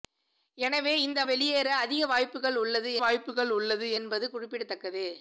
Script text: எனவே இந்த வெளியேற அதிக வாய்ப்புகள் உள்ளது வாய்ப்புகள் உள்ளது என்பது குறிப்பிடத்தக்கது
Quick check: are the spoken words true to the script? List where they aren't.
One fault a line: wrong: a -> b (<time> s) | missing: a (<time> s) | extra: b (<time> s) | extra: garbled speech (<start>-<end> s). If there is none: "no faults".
no faults